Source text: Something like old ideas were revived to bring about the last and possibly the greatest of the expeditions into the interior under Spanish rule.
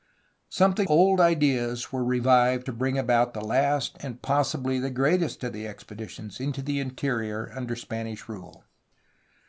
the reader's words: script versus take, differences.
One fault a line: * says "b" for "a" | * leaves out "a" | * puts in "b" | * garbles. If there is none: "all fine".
* leaves out "like"